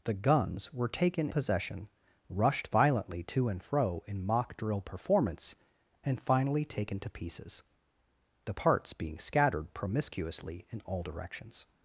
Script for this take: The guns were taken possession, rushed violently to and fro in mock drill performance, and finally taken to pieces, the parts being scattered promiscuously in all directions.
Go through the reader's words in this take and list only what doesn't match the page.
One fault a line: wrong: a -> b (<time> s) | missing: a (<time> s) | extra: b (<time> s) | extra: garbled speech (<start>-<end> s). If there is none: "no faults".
no faults